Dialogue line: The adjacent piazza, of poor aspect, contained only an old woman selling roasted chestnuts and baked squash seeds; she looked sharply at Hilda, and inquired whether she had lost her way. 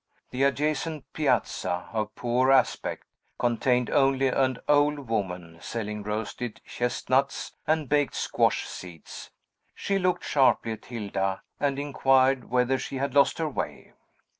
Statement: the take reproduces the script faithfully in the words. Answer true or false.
true